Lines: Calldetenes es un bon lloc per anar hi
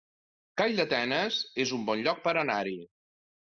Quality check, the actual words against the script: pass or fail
pass